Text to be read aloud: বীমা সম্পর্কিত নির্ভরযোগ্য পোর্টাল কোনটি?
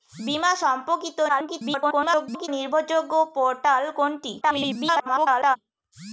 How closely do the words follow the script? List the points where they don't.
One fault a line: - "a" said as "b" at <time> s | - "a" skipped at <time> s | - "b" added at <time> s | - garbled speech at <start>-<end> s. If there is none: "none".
- garbled speech at 1.3-2.5 s
- garbled speech at 4.4-5.6 s